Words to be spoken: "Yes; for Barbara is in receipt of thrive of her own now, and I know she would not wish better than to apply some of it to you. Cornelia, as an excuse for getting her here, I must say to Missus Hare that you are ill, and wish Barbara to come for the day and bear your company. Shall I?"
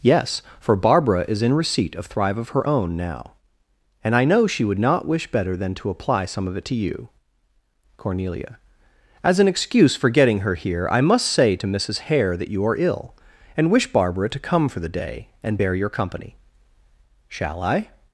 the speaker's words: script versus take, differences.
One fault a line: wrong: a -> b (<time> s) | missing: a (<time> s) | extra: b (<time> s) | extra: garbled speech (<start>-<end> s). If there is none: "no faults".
no faults